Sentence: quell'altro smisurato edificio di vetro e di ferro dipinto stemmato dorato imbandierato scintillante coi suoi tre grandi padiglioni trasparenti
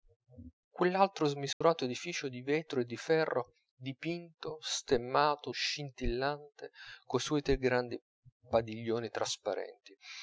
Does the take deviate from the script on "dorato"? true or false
true